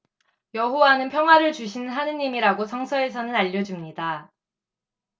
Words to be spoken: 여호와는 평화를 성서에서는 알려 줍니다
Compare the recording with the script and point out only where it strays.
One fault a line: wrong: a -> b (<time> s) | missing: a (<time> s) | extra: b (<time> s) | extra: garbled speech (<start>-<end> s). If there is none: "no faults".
extra: 주시는 하느님이라고 (1.5 s)